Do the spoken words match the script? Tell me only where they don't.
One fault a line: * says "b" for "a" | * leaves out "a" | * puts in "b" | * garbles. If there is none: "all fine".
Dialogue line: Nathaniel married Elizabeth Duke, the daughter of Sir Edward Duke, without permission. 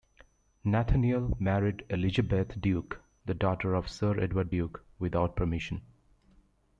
all fine